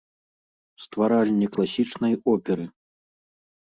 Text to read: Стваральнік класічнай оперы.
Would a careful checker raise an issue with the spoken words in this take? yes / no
no